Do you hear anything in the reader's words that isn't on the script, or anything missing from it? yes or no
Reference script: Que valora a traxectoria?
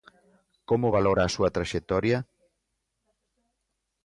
yes